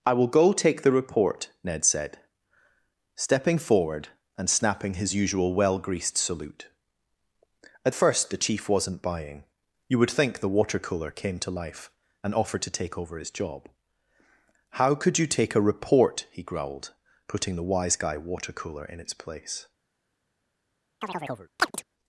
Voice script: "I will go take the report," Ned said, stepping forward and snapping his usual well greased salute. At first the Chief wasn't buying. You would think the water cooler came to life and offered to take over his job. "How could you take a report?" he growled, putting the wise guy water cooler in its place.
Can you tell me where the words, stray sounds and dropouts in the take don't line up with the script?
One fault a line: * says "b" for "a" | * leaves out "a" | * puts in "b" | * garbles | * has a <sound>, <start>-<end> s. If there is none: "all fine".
* has a chirp, 21.0-21.8 s